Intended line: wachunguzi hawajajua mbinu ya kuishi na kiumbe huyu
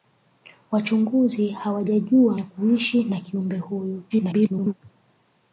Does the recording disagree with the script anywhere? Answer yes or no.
yes